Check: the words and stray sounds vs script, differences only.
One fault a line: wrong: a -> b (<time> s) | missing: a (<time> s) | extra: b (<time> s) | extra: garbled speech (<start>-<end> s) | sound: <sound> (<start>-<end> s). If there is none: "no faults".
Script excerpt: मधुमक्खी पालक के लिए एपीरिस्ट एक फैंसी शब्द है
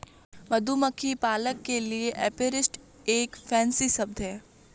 no faults